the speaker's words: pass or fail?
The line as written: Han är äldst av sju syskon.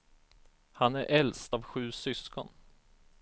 pass